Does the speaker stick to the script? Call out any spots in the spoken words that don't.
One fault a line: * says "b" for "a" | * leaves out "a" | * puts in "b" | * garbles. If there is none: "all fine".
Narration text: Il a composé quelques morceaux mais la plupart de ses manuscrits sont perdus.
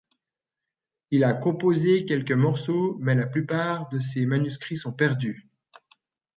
all fine